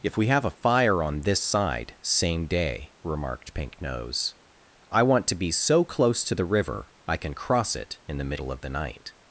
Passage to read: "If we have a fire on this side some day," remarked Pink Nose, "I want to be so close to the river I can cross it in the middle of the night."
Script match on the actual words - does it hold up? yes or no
no